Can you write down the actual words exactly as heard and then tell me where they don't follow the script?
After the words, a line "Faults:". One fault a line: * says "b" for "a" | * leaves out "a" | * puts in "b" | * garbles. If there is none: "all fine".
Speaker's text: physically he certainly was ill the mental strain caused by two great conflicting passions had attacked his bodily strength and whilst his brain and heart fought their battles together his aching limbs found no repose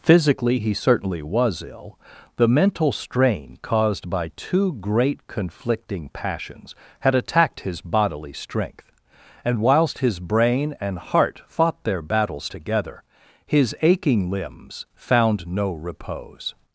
physically he certainly was ill the mental strain caused by two great conflicting passions had attacked his bodily strength and whilst his brain and heart fought their battles together his aching limbs found no repose
Faults:
all fine